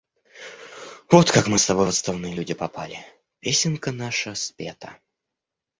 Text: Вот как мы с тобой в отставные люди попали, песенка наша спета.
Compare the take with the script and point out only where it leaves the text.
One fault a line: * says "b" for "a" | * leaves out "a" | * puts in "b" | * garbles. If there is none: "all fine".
all fine